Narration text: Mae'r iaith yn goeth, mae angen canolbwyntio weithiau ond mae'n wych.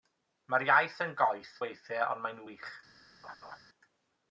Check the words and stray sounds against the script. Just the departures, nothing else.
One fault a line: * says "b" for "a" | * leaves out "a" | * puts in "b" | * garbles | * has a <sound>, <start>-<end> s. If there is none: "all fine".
* leaves out "mae angen canolbwyntio"
* has a laugh, 3.2-3.6 s